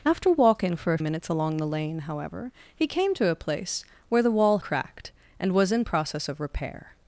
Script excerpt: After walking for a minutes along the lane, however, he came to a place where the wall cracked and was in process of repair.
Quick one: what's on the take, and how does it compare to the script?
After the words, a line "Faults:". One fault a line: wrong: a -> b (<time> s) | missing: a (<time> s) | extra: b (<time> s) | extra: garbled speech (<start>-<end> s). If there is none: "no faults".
After walking for a minutes along the lane, however, he came to a place where the wall cracked and was in process of repair.
Faults:
no faults